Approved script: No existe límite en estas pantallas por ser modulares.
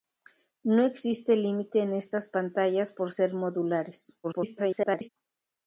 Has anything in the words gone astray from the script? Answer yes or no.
yes